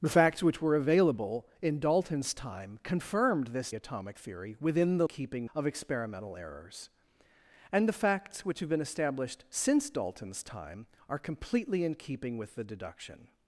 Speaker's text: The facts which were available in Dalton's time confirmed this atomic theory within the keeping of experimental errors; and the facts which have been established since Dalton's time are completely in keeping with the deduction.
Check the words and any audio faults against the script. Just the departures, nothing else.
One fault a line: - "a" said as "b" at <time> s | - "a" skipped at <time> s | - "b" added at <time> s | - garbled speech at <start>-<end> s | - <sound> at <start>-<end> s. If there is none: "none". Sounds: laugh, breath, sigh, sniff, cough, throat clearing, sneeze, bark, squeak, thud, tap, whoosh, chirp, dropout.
none